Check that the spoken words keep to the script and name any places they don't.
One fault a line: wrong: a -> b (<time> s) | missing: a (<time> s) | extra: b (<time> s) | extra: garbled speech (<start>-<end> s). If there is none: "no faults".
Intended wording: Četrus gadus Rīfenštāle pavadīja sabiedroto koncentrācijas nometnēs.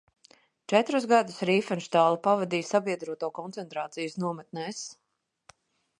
no faults